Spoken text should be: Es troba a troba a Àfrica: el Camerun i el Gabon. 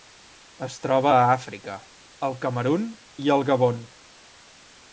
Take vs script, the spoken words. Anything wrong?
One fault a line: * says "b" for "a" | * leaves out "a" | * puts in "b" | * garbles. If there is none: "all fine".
* leaves out "troba a"